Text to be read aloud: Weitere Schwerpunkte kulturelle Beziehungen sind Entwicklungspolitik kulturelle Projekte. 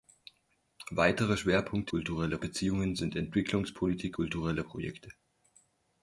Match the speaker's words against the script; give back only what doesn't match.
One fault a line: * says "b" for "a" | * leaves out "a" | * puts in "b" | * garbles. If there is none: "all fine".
all fine